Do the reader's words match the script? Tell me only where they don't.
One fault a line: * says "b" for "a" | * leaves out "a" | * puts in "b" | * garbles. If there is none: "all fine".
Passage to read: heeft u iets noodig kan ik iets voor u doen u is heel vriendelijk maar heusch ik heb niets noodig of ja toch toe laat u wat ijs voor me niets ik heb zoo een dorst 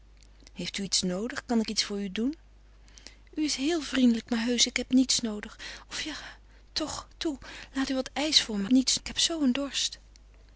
all fine